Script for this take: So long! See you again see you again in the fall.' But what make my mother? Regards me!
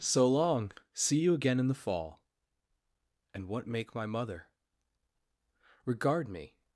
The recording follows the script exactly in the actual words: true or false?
false